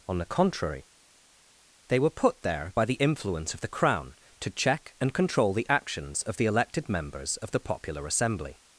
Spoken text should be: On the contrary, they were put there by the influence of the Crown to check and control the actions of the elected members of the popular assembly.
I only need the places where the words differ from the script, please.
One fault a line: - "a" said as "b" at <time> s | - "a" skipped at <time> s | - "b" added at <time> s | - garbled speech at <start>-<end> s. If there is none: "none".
none